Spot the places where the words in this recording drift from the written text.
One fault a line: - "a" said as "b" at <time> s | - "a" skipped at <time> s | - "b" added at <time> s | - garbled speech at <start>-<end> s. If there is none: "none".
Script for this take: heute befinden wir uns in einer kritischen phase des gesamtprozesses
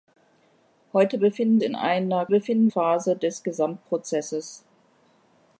- "wir uns" skipped at 1.6 s
- "kritischen" said as "befinden" at 2.3 s